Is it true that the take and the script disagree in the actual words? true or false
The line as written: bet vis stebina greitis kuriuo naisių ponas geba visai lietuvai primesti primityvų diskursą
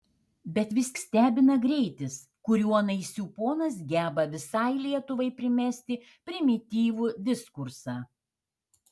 false